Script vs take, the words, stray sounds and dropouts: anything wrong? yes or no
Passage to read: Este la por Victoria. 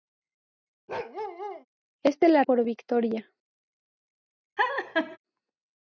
yes